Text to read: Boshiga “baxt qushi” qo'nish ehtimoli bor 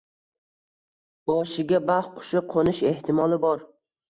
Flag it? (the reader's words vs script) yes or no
no